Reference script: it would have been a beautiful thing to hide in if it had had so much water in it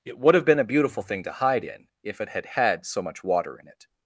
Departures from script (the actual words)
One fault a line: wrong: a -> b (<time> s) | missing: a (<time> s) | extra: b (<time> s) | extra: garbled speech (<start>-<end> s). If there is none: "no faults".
no faults